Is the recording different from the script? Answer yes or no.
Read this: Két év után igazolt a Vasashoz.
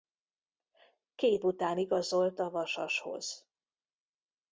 yes